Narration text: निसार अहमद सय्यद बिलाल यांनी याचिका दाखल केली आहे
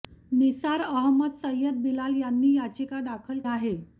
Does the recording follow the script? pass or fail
fail